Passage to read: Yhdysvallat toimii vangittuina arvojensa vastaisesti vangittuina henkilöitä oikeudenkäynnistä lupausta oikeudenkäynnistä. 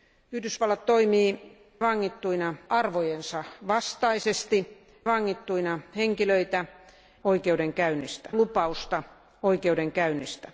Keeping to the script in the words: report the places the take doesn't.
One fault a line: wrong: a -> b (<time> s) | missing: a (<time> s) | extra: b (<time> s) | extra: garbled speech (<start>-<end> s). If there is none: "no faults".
no faults